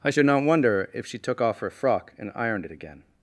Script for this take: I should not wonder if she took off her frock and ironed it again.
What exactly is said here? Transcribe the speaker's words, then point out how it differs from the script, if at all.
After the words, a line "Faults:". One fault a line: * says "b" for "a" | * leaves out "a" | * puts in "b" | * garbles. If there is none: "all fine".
I should not wonder if she took off her frock and ironed it again.
Faults:
all fine